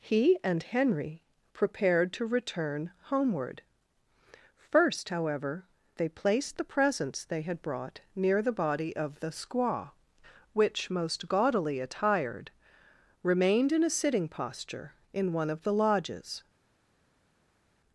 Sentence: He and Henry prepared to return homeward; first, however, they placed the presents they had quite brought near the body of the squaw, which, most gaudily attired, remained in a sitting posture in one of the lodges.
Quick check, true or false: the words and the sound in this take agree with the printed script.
false